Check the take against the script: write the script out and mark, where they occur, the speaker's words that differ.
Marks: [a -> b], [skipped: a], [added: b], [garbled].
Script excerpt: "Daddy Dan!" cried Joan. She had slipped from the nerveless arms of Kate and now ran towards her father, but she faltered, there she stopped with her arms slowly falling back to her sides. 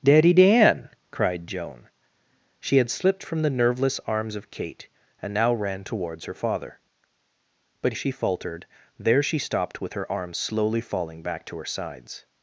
"Daddy Dan!" cried Joan. She had slipped from the nerveless arms of Kate and now ran towards her father, but she faltered, there she stopped with her arms slowly falling back to her sides.